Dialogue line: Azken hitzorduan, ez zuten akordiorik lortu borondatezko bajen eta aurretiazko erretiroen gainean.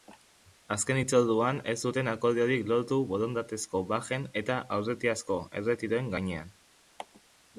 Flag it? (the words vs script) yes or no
no